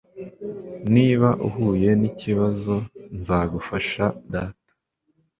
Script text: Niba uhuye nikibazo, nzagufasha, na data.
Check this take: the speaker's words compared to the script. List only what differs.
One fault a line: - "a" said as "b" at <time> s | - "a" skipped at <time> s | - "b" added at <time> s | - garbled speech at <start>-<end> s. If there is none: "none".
- "na" skipped at 4.0 s